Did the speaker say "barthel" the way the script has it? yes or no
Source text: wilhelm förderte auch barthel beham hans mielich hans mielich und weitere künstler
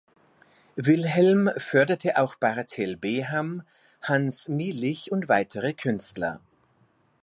yes